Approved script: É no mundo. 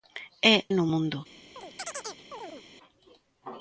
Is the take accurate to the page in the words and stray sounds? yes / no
no